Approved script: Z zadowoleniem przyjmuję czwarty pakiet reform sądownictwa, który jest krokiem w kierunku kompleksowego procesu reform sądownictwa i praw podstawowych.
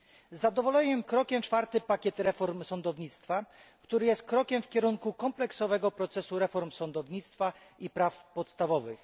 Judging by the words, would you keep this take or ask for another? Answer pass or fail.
fail